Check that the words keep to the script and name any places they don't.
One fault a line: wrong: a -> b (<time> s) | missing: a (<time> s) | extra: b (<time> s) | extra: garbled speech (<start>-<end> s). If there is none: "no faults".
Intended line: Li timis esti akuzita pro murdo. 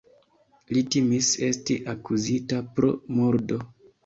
no faults